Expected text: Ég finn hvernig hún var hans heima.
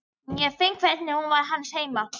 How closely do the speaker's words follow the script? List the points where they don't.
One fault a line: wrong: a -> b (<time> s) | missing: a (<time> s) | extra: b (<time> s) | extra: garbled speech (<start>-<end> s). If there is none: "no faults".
no faults